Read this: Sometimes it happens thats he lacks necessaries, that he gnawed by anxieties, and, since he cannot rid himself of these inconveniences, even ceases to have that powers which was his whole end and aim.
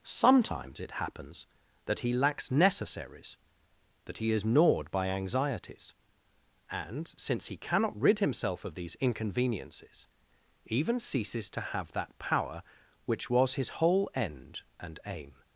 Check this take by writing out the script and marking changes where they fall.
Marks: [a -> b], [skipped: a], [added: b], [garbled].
Sometimes it happens [thats -> that] he lacks necessaries, that he [added: is] gnawed by anxieties, and, since he cannot rid himself of these inconveniences, even ceases to have that [powers -> power] which was his whole end and aim.